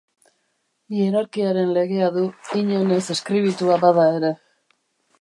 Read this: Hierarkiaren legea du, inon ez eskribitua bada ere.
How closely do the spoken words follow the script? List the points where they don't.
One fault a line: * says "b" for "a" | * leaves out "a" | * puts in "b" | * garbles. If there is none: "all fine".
all fine